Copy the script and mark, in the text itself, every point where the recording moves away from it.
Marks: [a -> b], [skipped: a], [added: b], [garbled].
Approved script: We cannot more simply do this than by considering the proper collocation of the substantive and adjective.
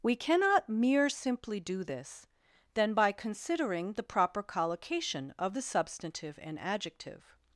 We cannot [more -> mere] simply do this than by considering the proper collocation of the substantive and adjective.